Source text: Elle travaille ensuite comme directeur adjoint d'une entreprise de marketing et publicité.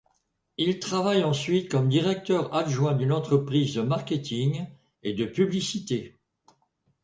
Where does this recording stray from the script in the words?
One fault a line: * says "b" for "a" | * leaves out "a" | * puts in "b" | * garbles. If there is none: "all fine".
* says "Il" for "Elle"
* puts in "de"